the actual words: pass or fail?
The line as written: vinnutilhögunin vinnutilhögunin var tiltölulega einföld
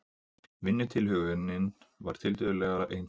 fail